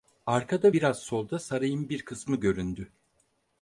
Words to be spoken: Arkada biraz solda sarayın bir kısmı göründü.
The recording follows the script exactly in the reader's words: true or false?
true